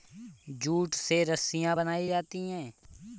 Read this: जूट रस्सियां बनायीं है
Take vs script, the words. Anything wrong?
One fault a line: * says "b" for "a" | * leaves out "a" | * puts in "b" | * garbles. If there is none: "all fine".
* puts in "से"
* puts in "जाती"